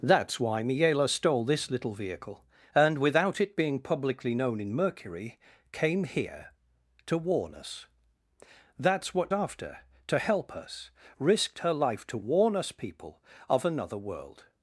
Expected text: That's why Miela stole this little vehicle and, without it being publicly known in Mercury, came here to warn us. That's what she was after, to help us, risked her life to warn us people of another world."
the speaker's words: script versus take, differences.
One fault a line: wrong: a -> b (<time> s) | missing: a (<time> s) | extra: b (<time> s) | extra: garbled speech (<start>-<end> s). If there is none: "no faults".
missing: she was (9.3 s)